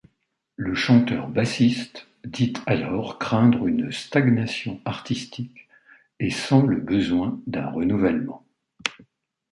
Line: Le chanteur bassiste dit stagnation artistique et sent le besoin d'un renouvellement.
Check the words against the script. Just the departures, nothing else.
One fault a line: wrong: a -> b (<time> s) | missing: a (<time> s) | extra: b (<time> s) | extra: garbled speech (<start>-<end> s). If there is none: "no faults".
extra: alors craindre une (2.7 s)